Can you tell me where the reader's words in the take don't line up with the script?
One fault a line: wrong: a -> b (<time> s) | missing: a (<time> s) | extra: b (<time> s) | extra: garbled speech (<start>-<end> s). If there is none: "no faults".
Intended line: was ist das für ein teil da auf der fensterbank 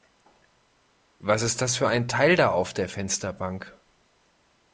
no faults